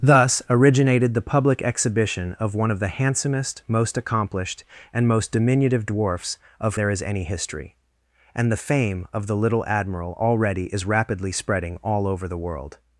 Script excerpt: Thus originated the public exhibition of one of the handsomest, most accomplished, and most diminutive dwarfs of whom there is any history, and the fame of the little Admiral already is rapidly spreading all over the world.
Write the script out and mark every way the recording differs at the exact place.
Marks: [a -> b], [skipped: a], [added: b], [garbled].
Thus originated the public exhibition of one of the handsomest, most accomplished, and most diminutive dwarfs of [skipped: whom] there is any history, and the fame of the little Admiral already is rapidly spreading all over the world.